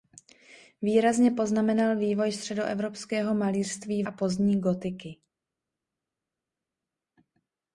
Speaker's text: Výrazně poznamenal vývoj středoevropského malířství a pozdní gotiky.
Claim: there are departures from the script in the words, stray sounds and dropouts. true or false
false